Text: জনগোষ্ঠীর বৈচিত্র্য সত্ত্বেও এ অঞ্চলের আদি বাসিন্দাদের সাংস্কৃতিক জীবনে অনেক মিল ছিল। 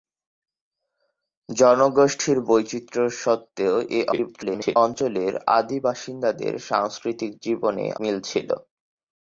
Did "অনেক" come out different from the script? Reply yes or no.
yes